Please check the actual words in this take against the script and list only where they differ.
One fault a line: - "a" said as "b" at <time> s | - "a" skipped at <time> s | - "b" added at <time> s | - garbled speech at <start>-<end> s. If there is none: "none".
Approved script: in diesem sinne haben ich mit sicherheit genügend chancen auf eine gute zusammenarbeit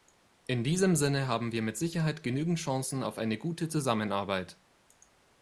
- "ich" said as "wir" at 1.5 s